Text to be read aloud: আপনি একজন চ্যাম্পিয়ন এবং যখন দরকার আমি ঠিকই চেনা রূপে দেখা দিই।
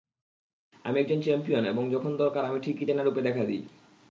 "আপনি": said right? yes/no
no